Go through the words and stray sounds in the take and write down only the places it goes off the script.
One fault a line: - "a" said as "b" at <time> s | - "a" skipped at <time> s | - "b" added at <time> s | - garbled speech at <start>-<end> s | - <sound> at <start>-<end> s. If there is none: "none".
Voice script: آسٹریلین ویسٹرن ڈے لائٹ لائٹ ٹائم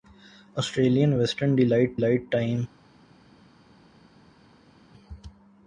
none